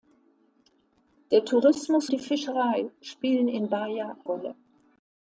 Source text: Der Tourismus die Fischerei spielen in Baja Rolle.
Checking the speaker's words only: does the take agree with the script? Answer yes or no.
yes